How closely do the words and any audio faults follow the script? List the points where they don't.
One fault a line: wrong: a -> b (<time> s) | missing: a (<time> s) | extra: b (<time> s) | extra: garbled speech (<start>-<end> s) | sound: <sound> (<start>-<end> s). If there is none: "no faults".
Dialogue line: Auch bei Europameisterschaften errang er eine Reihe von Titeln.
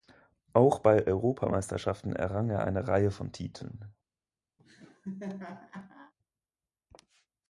sound: laugh (4.6-6.1 s)